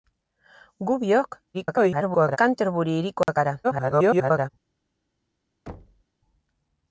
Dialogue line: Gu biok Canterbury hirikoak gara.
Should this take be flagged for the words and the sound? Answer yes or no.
yes